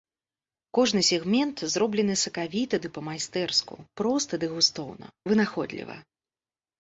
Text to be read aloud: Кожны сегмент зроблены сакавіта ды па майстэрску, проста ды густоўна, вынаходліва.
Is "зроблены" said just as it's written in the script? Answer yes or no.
yes